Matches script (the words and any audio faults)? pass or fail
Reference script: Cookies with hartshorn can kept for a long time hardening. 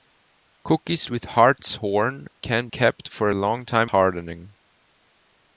pass